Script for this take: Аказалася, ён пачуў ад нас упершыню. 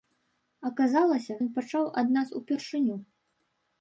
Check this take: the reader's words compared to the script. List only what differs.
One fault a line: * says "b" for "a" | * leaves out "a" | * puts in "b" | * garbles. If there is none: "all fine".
all fine